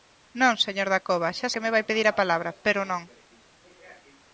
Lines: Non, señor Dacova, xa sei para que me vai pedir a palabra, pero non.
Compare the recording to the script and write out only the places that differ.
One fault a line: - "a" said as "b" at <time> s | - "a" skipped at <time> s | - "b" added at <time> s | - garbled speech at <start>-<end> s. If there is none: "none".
- "sei para" skipped at 1.5 s